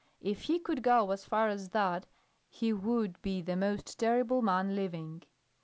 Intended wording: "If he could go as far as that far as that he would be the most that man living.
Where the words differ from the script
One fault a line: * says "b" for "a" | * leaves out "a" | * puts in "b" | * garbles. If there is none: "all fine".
* leaves out "far as that"
* says "terrible" for "that"